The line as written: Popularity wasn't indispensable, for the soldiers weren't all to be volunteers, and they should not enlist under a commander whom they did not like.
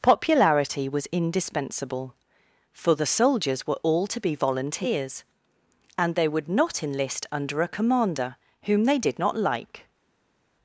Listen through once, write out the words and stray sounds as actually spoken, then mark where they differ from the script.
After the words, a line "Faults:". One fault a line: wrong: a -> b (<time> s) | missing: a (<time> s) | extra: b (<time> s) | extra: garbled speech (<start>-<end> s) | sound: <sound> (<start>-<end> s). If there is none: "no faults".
Popularity was indispensable, for the soldiers were all to be volunteers, and they would not enlist under a commander whom they did not like.
Faults:
wrong: wasn't -> was (0.9 s)
wrong: weren't -> were (3.7 s)
wrong: should -> would (6.3 s)